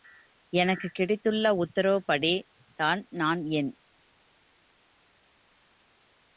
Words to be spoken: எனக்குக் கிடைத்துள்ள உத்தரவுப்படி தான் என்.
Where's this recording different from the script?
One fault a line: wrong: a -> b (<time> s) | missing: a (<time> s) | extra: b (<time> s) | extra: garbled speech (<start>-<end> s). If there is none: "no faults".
extra: நான் (3.1 s)